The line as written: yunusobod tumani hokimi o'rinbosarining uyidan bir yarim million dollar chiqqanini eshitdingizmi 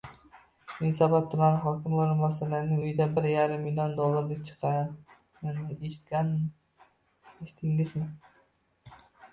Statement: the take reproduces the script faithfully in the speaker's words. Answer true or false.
true